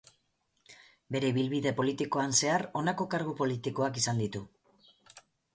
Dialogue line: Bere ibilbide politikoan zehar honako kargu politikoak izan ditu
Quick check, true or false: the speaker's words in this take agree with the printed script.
true